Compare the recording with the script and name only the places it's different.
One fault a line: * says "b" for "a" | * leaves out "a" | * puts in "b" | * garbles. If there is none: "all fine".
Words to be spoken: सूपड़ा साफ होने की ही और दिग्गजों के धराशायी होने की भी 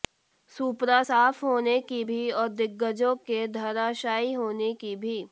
* says "भी" for "ही"